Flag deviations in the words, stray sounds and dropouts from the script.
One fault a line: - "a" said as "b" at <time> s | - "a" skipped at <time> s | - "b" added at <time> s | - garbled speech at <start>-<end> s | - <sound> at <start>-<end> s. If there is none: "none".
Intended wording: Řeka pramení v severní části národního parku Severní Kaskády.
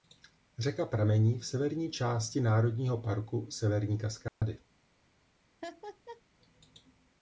- dropout at 4.3-4.4 s
- laugh at 5.6-6.2 s